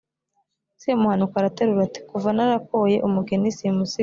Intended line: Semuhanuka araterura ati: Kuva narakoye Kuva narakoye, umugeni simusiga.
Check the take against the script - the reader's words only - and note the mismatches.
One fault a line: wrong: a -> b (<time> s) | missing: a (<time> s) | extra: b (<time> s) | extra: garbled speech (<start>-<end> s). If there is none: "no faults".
missing: Kuva narakoye (3.0 s)